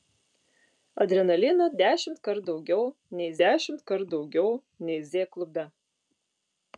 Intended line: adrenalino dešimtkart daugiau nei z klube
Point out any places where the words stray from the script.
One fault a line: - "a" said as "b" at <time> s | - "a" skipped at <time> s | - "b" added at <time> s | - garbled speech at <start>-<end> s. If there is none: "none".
- "dešimtkart daugiau nei" added at 3.4 s